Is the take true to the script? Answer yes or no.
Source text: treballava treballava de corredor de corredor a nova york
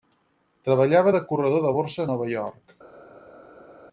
no